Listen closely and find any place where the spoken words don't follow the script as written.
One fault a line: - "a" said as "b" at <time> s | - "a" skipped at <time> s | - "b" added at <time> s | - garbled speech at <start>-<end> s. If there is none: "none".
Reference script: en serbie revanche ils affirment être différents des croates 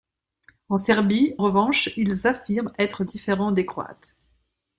none